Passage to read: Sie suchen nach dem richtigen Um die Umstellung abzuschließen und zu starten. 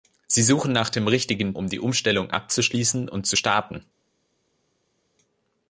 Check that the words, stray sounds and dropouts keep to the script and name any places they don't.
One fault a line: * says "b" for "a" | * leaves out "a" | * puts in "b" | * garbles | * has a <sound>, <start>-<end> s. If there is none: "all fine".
all fine